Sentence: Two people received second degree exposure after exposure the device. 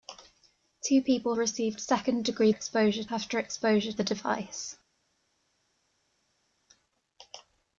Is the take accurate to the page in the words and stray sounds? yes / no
yes